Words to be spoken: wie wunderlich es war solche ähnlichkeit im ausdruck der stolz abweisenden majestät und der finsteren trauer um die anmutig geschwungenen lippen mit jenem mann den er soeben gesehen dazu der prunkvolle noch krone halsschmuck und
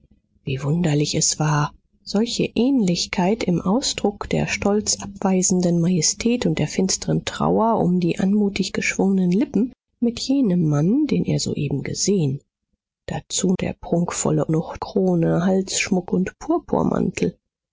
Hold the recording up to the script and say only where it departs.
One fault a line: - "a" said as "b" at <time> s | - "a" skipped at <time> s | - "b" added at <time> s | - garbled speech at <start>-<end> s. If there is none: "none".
none